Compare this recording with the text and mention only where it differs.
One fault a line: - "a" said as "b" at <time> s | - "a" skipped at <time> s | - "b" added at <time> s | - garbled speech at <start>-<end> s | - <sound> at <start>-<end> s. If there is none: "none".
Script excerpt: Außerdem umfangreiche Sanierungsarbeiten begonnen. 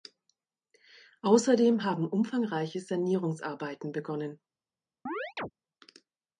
- "haben" added at 1.8 s
- chirp at 5.1-5.5 s